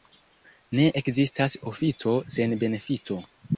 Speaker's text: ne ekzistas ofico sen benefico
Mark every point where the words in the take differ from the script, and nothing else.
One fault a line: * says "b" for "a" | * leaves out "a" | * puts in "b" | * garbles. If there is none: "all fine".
all fine